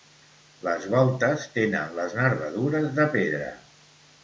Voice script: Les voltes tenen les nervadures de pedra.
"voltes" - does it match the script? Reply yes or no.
yes